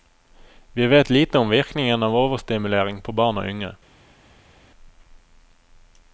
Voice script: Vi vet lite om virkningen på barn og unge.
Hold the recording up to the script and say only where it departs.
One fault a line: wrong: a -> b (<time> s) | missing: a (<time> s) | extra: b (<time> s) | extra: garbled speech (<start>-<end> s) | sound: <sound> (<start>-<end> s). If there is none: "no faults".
extra: av overstimulering (2.0 s)